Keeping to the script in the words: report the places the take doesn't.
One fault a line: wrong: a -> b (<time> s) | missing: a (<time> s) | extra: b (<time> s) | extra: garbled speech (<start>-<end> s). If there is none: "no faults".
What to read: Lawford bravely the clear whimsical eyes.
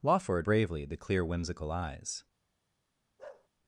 no faults